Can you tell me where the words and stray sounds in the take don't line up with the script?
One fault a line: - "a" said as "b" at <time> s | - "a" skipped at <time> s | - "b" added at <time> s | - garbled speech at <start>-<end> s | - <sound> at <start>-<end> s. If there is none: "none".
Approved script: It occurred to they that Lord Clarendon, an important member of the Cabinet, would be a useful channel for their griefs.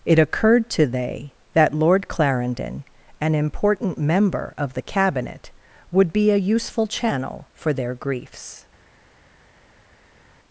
none